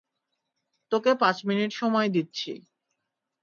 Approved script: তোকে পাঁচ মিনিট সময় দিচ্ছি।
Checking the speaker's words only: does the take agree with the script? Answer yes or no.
yes